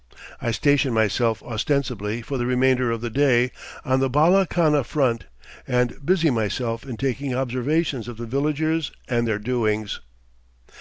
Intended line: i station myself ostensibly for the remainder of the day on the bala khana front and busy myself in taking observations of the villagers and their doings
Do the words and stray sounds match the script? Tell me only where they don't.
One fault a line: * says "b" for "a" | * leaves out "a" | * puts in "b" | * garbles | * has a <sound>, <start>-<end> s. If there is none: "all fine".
all fine